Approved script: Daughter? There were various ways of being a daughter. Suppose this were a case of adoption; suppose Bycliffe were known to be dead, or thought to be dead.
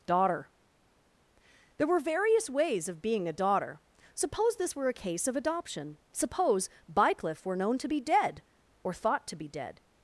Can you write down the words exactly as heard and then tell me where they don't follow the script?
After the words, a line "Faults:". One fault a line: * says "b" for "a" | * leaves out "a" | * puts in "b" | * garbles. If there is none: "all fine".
Daughter? There were various ways of being a daughter. Suppose this were a case of adoption; suppose Bycliffe were known to be dead, or thought to be dead.
Faults:
all fine